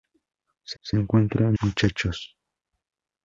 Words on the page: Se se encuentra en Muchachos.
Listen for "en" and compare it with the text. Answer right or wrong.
right